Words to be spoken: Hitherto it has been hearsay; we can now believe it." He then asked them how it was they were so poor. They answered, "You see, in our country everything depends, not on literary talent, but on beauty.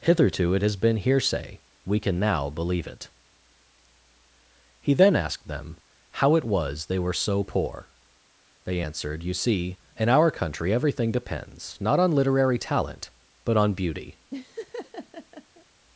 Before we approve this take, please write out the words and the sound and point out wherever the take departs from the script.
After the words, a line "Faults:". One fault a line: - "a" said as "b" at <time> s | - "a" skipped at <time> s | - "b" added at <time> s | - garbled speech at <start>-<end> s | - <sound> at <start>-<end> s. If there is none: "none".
Hitherto it has been hearsay; we can now believe it." He then asked them how it was they were so poor. They answered, "You see, in our country everything depends, not on literary talent, but on beauty.
Faults:
- laugh at 14.3-15.7 s